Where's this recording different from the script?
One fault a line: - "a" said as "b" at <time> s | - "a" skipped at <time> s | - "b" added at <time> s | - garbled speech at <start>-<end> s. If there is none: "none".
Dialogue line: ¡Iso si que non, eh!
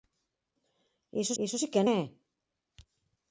- "iso" added at 1.4 s
- "non" skipped at 1.8 s